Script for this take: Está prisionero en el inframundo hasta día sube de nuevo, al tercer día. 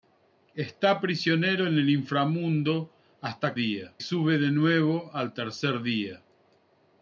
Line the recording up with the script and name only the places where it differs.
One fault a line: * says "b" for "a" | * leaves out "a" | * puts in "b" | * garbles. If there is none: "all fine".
all fine